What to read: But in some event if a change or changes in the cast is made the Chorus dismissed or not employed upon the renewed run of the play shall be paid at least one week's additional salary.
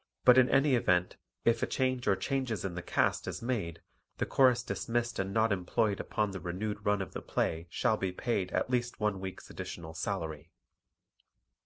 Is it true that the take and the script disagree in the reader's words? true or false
true